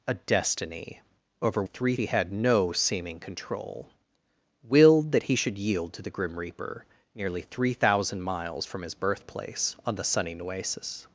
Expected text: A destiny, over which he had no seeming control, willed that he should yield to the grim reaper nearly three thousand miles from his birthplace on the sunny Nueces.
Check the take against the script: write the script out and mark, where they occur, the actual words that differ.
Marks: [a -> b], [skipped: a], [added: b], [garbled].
A destiny, over [which -> three] he had no seeming control, willed that he should yield to the grim reaper nearly three thousand miles from his birthplace on the sunny Nueces.